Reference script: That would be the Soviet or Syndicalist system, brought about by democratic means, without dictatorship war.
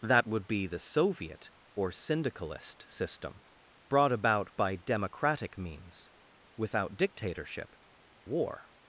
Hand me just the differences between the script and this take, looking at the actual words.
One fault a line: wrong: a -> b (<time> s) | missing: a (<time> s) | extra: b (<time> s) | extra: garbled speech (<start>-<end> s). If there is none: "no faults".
no faults